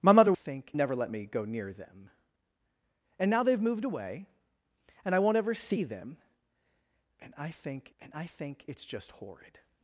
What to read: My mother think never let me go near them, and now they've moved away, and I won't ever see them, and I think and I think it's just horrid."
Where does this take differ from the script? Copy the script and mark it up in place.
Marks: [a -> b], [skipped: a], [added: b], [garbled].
My mother think never let me go near them, and now they've moved away, and I won't ever see them, and I think and I think it's just horrid."